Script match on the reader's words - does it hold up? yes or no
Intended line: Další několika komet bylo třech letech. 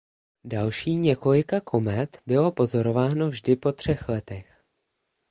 no